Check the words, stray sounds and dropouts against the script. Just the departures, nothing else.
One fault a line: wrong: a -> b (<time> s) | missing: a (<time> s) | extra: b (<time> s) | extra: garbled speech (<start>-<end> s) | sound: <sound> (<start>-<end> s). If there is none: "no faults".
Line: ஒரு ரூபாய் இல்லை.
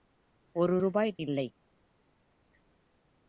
no faults